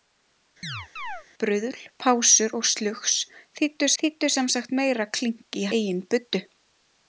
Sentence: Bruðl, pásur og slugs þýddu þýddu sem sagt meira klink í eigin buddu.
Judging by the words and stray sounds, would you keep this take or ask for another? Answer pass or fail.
fail